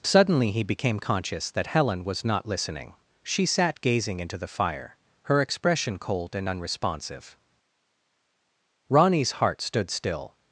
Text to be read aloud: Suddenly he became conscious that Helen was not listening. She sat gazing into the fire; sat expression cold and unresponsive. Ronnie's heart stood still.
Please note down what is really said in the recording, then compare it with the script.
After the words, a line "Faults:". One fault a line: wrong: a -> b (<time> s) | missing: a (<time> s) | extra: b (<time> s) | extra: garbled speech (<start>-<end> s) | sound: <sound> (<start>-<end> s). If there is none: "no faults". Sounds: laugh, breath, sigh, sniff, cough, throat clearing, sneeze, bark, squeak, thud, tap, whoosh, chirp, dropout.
Suddenly he became conscious that Helen was not listening. She sat gazing into the fire; her expression cold and unresponsive. Ronnie's heart stood still.
Faults:
wrong: sat -> her (5.2 s)